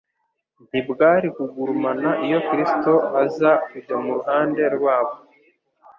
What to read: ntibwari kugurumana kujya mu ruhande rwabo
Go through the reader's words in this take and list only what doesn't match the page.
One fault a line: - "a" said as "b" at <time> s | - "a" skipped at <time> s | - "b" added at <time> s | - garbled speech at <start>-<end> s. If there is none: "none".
- "iyo Kristo aza" added at 2.3 s